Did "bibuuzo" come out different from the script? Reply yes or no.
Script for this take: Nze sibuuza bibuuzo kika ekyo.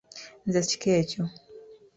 yes